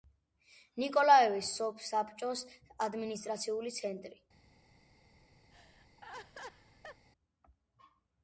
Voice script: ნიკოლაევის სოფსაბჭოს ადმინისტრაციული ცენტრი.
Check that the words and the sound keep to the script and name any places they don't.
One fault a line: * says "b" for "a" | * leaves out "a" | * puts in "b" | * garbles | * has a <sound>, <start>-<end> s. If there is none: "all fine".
* has a laugh, 5.5-7.1 s